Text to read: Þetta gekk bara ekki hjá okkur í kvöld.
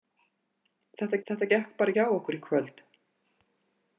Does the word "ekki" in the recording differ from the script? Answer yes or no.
yes